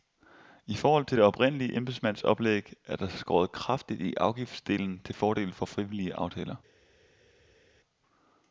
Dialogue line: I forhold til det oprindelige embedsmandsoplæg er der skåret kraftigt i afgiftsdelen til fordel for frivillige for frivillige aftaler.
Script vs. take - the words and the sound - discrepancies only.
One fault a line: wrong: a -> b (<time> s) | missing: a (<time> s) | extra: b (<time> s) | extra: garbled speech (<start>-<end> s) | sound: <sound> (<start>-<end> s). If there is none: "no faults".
missing: for frivillige (6.1 s)